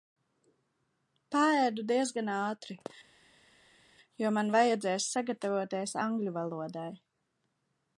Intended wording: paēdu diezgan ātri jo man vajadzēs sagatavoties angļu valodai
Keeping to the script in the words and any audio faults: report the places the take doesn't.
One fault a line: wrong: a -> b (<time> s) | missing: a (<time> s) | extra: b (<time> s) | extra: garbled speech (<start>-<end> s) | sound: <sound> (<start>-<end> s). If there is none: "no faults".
no faults